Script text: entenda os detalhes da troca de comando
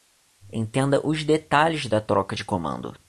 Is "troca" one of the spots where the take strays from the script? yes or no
no